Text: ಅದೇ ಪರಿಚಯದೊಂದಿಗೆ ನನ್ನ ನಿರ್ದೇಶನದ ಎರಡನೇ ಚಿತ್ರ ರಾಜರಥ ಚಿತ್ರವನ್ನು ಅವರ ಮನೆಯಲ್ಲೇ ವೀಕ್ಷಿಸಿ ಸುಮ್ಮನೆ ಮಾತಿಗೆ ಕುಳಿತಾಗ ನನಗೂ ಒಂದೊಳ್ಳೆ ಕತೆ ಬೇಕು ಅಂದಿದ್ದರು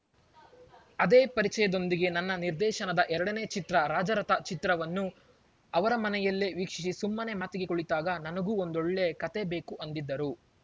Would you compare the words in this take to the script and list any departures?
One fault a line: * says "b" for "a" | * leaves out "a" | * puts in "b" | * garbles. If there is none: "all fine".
all fine